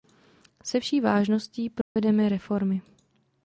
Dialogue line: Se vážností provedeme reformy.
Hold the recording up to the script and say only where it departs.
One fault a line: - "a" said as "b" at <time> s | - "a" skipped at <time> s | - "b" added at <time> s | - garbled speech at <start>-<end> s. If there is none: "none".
- "vší" added at 0.8 s